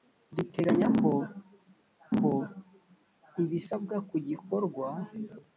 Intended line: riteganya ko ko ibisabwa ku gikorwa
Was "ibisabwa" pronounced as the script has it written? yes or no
yes